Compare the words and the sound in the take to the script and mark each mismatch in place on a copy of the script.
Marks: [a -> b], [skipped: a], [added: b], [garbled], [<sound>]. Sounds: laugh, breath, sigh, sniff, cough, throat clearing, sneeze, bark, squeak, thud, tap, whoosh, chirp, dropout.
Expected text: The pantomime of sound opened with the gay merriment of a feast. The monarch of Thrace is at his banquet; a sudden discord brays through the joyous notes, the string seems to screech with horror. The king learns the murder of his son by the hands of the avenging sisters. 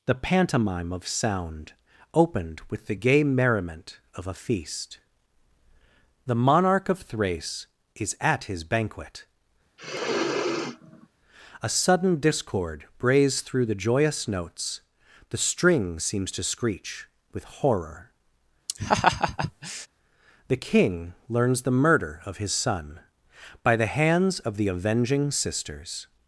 The pantomime of sound opened with the gay merriment of a feast. The monarch of Thrace is at his banquet; [sniff] a sudden discord brays through the joyous notes, the string seems to screech with horror. [laugh] The king learns the murder of his son by the hands of the avenging sisters.